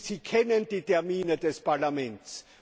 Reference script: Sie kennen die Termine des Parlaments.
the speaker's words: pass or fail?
pass